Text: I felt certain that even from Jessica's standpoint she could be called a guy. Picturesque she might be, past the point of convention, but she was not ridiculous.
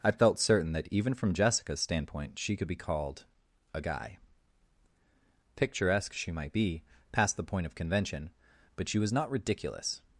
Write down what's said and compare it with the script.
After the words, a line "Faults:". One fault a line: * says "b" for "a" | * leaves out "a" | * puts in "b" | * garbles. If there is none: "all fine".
I felt certain that even from Jessica's standpoint she could be called a guy. Picturesque she might be, past the point of convention, but she was not ridiculous.
Faults:
all fine